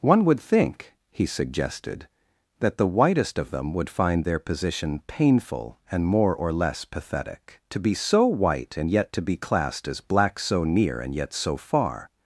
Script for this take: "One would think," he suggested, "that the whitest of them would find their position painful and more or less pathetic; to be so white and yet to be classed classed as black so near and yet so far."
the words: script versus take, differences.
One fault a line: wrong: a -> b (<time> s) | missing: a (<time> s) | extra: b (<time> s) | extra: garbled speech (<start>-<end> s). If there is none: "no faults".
missing: classed (9.9 s)